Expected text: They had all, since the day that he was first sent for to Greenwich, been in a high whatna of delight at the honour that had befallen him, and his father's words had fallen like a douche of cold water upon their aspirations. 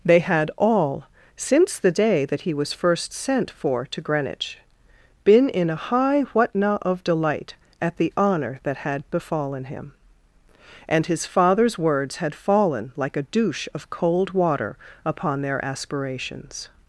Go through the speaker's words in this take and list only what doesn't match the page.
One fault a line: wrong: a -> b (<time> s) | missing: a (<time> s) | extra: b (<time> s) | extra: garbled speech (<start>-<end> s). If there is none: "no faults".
no faults